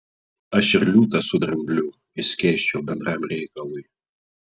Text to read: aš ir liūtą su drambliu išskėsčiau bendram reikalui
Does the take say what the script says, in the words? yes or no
yes